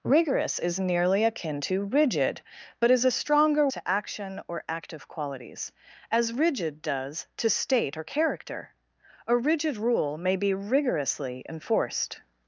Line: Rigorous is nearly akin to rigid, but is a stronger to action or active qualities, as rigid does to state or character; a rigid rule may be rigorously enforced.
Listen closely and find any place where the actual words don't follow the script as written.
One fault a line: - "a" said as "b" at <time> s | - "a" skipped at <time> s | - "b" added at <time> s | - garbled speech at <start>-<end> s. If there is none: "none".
none